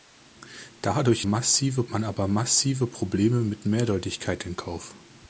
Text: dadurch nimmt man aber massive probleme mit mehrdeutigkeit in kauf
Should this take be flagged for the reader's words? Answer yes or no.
yes